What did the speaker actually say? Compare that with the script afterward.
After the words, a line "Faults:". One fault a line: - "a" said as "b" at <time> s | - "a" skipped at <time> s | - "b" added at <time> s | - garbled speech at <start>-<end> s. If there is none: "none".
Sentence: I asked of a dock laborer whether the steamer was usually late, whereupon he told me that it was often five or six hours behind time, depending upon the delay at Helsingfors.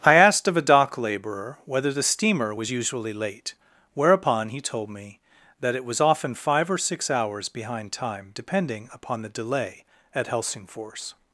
I asked of a dock laborer whether the steamer was usually late, whereupon he told me that it was often five or six hours behind time, depending upon the delay at Helsingfors.
Faults:
none